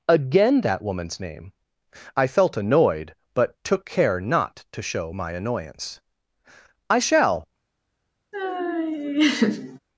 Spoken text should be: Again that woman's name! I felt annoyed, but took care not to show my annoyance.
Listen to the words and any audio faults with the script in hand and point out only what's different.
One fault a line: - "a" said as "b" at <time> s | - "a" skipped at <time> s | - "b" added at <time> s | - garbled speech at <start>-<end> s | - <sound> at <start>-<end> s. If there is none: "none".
- "I shall" added at 6.9 s
- laugh at 8.3-9.8 s